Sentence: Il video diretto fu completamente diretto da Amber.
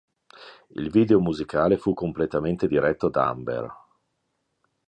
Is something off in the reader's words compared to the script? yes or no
yes